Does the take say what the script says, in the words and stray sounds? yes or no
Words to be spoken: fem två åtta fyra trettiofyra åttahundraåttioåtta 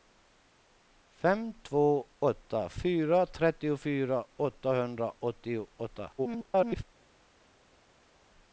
no